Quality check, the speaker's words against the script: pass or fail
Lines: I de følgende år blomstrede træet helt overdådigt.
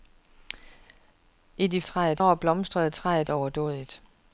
fail